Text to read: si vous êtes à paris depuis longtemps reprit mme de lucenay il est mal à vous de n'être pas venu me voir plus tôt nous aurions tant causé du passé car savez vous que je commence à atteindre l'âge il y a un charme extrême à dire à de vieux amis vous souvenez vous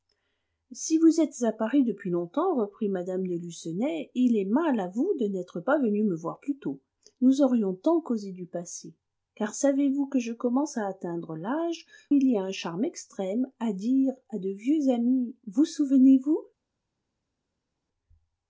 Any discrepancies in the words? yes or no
no